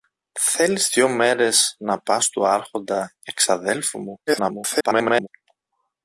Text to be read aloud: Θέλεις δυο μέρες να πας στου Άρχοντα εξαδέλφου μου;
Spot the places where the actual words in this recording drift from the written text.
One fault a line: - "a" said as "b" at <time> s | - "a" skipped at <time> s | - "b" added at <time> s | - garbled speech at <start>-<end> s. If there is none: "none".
- garbled speech at 4.3-5.3 s